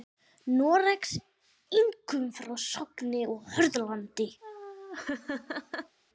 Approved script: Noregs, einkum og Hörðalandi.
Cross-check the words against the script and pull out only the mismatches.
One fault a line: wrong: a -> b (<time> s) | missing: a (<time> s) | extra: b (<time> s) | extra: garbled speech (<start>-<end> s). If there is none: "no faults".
extra: frá Sogni (2.4 s)